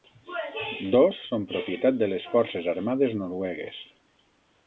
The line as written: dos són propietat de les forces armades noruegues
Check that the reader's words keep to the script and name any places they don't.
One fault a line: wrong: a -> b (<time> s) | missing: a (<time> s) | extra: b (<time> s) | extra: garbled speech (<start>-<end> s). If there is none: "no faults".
no faults